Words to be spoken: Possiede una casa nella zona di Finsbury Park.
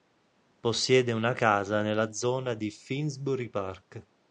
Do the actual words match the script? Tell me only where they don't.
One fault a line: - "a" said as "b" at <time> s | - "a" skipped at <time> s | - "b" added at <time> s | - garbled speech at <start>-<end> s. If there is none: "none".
none